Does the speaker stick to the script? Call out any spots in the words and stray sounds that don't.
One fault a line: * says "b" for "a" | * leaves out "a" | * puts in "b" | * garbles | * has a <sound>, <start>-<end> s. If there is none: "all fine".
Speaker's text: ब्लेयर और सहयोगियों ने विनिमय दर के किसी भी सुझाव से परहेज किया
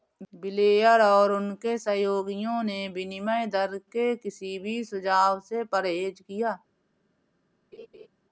* puts in "उनके"
* has a laugh, 7.7-8.1 s